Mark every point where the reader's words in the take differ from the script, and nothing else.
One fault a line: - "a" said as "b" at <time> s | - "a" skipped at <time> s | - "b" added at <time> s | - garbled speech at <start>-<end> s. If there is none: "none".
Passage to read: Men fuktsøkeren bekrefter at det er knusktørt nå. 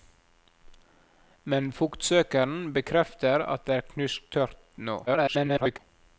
- garbled speech at 5.1-5.8 s